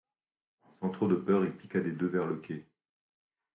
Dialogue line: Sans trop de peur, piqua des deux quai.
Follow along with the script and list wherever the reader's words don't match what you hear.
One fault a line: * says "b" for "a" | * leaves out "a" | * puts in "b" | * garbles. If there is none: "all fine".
* puts in "il"
* puts in "vers le"